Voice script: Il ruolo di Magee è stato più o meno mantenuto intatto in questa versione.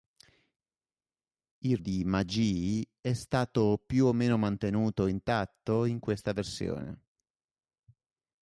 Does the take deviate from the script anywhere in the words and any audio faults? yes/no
yes